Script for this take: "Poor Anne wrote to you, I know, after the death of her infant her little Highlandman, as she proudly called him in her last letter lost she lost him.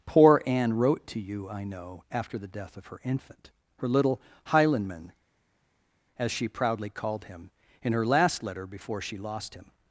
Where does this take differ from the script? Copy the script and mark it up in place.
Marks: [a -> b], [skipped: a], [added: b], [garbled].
"Poor Anne wrote to you, I know, after the death of her infant her little Highlandman, as she proudly called him in her last letter [lost -> before] she lost him.